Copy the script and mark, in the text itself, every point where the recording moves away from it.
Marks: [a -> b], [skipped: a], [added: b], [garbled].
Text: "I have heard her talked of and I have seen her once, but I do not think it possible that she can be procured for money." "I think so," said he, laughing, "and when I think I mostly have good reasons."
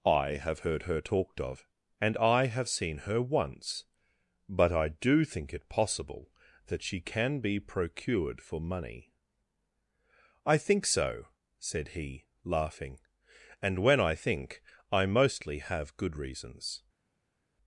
"I have heard her talked of and I have seen her once, but I do [skipped: not] think it possible that she can be procured for money." "I think so," said he, laughing, "and when I think I mostly have good reasons."